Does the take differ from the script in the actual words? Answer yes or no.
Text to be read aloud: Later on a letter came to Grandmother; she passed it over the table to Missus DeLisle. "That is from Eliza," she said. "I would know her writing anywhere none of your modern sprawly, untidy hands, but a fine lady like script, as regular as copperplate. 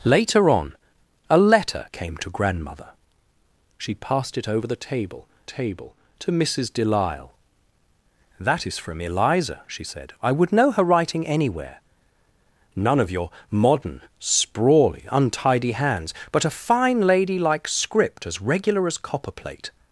yes